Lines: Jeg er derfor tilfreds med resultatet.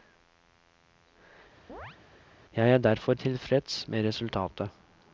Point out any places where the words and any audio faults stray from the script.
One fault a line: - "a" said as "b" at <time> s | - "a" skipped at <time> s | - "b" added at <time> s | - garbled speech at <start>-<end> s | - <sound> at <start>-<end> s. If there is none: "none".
- chirp at 1.7-2.0 s